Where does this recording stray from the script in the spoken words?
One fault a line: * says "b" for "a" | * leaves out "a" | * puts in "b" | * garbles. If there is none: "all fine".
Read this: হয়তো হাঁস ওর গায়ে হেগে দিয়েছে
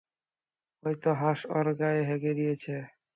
all fine